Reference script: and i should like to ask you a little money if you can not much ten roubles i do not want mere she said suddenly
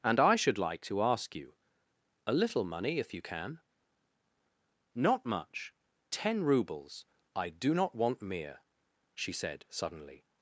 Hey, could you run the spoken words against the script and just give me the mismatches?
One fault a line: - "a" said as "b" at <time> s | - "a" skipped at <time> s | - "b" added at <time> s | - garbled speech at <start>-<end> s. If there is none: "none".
none